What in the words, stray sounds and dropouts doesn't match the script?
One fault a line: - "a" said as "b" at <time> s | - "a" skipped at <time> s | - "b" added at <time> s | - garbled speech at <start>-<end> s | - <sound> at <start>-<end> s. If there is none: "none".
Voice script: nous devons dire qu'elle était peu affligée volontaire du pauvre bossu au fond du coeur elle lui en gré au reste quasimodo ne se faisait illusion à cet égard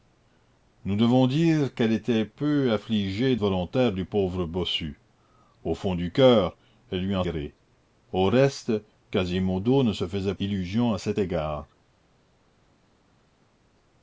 none